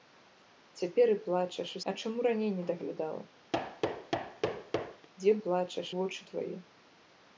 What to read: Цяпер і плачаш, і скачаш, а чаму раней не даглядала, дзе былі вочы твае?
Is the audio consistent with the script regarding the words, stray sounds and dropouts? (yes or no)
no